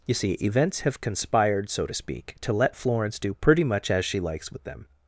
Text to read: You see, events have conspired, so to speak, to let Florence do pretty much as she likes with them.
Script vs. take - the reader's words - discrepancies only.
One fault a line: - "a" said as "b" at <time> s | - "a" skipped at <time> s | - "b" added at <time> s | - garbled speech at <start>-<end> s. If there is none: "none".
none